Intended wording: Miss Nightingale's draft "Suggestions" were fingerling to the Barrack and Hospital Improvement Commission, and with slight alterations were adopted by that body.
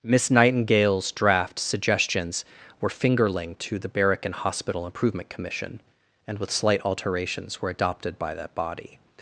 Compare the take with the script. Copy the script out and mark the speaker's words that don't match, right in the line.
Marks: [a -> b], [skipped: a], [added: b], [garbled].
Miss Nightingale's draft "Suggestions" were fingerling to the Barrack and Hospital Improvement Commission, and with slight alterations were adopted by that body.